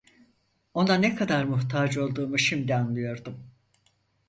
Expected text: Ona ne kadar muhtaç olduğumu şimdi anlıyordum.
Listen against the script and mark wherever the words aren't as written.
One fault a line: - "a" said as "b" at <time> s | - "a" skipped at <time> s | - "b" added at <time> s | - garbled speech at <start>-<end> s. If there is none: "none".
none